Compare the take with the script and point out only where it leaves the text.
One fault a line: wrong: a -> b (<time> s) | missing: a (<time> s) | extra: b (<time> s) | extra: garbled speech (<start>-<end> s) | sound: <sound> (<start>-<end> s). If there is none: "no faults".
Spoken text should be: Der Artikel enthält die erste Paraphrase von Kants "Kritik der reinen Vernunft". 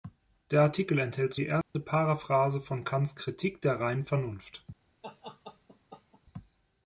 sound: dropout (1.6-1.7 s)
sound: laugh (5.0-6.2 s)